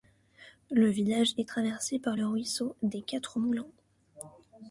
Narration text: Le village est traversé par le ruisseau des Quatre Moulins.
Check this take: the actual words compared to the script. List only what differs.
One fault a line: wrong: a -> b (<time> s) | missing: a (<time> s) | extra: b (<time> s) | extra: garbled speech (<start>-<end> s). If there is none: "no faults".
no faults